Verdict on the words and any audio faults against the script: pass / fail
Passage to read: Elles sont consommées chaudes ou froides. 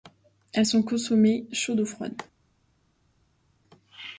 pass